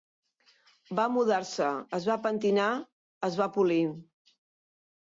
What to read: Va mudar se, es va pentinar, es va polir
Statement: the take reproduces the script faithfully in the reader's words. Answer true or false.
true